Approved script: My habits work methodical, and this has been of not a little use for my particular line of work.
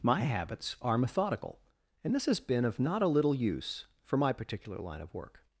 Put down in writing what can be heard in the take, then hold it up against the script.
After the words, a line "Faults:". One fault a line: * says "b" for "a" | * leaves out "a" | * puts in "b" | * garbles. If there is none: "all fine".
My habits are methodical, and this has been of not a little use for my particular line of work.
Faults:
* says "are" for "work"